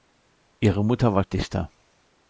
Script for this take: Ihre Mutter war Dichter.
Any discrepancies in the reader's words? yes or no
no